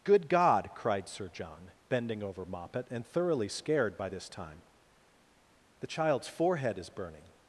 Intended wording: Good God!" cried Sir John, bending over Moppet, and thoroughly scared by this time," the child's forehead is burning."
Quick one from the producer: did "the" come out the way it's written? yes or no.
yes